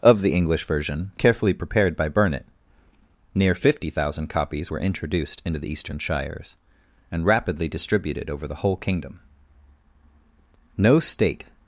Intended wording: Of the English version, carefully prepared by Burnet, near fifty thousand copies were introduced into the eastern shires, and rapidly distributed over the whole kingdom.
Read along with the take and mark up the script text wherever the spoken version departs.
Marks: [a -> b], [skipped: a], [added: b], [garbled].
Of the English version, carefully prepared by Burnet, near fifty thousand copies were introduced into the eastern shires, and rapidly distributed over the whole kingdom. [added: No state]